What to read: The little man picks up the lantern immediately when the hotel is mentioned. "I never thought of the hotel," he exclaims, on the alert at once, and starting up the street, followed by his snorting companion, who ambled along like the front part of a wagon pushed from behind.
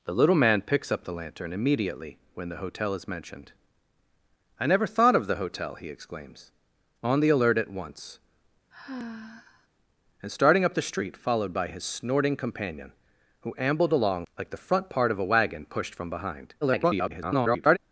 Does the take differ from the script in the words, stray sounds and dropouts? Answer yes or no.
yes